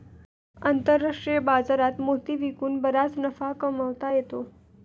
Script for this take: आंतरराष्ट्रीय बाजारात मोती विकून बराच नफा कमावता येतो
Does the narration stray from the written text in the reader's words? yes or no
no